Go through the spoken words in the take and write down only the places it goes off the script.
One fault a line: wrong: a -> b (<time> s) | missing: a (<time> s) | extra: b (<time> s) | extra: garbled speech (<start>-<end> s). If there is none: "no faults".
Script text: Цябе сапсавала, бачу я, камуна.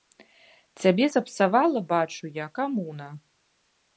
no faults